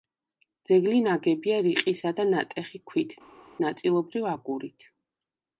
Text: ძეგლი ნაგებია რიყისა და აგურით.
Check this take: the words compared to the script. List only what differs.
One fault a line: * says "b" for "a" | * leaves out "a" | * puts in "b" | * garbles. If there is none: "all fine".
* puts in "ნატეხი ქვით ნაწილობრივ"